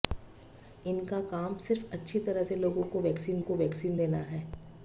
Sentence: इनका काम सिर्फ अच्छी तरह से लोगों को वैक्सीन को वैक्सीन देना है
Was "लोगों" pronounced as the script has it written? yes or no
yes